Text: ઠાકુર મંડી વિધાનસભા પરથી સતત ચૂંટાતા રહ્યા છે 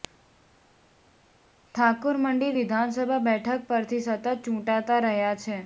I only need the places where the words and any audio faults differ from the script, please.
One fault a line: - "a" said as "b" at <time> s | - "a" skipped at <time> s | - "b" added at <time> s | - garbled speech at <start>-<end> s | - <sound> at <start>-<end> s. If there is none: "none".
- "બેઠક" added at 3.3 s